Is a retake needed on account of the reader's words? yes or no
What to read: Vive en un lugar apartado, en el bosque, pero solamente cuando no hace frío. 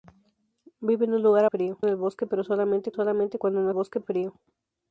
yes